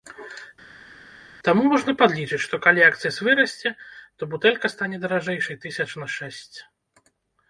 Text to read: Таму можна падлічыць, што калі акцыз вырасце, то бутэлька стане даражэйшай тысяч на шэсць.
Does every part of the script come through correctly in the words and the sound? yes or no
yes